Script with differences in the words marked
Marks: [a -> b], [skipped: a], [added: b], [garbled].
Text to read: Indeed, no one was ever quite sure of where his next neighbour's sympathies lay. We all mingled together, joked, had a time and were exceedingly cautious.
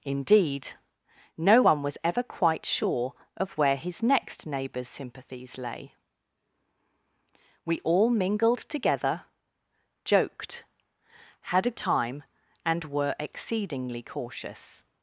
Indeed, no one was ever quite sure of where his next neighbour's sympathies lay. We all mingled together, joked, had a time and were exceedingly cautious.